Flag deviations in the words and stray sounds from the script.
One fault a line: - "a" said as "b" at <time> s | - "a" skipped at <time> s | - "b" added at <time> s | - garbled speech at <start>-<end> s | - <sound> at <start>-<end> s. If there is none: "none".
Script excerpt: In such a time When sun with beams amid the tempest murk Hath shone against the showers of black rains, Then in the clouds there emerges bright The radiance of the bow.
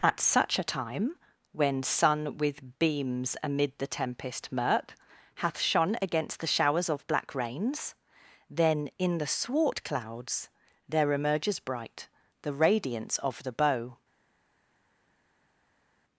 - "In" said as "At" at 0.0 s
- "swart" added at 9.3 s